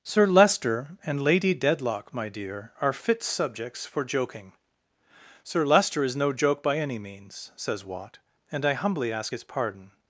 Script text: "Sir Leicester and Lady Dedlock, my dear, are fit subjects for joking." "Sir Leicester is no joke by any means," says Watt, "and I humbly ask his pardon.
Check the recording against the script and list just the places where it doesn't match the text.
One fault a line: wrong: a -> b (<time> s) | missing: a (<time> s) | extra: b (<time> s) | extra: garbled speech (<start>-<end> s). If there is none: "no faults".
no faults